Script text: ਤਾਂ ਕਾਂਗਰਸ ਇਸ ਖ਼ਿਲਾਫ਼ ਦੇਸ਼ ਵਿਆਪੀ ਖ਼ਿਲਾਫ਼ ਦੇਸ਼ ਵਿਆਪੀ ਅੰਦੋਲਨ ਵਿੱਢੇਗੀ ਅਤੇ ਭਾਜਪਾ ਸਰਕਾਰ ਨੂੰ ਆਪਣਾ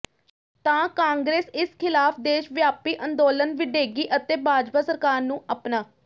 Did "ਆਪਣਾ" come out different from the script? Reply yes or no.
no